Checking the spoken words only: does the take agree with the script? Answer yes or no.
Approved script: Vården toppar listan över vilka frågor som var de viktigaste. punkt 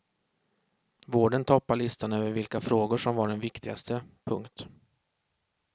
yes